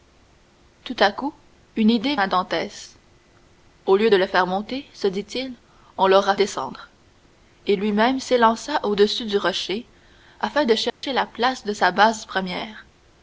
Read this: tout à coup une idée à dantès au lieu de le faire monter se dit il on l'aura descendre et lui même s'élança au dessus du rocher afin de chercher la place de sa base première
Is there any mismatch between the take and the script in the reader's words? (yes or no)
no